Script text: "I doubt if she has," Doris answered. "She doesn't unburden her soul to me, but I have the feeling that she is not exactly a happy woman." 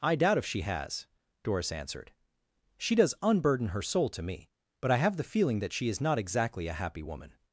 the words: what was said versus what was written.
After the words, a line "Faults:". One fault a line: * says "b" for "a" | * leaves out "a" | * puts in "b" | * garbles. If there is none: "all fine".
"I doubt if she has," Doris answered. "She does unburden her soul to me, but I have the feeling that she is not exactly a happy woman."
Faults:
* says "does" for "doesn't"